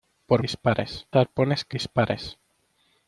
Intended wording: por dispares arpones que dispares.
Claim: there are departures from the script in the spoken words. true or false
false